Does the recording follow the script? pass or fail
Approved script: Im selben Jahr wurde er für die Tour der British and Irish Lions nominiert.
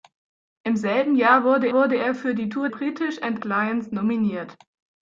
fail